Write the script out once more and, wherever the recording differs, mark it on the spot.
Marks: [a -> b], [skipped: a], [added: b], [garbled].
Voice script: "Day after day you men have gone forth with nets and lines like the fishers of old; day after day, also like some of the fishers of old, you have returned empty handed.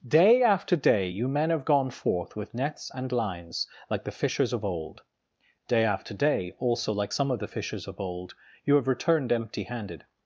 "Day after day you men have gone forth with nets and lines like the fishers of old; day after day, also like some of the fishers of old, you have returned empty handed.